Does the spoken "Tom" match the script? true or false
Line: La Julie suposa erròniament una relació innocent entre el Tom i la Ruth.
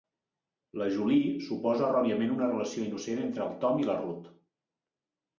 true